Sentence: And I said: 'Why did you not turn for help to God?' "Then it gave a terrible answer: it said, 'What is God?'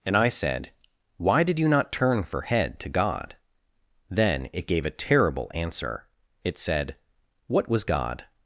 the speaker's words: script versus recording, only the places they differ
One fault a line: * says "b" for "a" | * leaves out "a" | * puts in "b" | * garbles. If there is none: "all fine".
* says "head" for "help"
* says "was" for "is"